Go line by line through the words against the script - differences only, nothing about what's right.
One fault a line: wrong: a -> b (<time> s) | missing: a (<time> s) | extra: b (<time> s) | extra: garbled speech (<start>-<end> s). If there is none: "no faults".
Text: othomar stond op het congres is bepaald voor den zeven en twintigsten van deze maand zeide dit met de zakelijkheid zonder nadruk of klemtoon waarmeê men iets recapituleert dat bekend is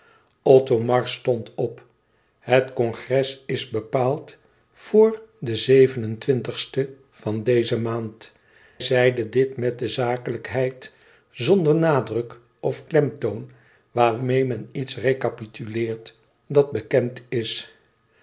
no faults